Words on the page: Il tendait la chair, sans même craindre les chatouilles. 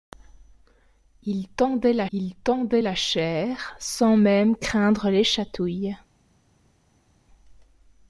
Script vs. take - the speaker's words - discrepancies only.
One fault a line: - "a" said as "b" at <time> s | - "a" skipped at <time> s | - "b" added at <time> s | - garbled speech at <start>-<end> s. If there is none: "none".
- "il tendait la" added at 2.1 s